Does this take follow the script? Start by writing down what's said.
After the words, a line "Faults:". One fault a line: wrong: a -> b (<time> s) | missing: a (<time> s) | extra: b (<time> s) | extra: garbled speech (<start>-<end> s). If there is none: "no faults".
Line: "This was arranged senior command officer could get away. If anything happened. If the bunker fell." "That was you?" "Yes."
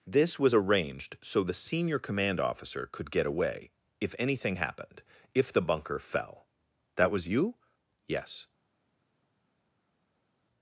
"This was arranged so the senior command officer could get away. If anything happened. If the bunker fell." "That was you?" "Yes."
Faults:
extra: so the (1.2 s)